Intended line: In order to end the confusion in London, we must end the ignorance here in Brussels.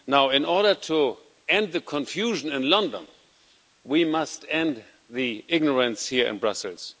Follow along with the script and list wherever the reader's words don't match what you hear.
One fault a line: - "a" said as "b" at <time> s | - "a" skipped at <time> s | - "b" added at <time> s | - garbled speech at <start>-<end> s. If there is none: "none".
none